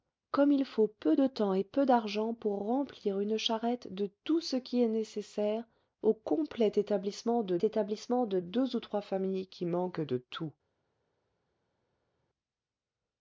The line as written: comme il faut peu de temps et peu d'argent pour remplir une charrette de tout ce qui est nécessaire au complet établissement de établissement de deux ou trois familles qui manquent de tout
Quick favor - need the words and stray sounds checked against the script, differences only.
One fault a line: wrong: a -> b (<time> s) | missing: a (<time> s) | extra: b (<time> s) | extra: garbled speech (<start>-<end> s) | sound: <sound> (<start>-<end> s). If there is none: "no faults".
no faults